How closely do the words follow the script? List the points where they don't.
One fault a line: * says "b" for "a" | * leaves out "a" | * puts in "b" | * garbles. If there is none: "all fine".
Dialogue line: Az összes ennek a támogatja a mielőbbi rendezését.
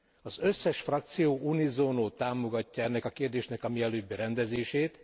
* puts in "frakció unisono támogatja"
* says "kérdésnek" for "támogatja"